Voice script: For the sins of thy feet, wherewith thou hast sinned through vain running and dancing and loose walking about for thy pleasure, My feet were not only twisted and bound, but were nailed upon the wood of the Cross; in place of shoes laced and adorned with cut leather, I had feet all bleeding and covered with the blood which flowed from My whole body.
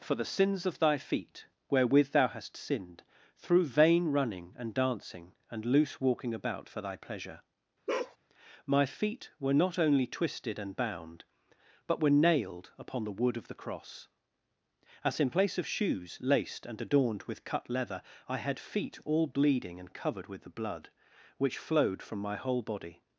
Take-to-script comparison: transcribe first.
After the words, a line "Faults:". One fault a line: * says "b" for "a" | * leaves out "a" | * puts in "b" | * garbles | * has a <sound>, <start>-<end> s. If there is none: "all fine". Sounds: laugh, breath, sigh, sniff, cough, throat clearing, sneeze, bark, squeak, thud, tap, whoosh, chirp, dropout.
For the sins of thy feet, wherewith thou hast sinned through vain running and dancing and loose walking about for thy pleasure, My feet were not only twisted and bound, but were nailed upon the wood of the Cross; as in place of shoes laced and adorned with cut leather, I had feet all bleeding and covered with the blood which flowed from My whole body.
Faults:
* has a bark, 7.9-8.2 s
* puts in "as"